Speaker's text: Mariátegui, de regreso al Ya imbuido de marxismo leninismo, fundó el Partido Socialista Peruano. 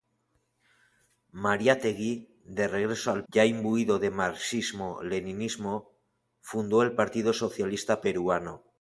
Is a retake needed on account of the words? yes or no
no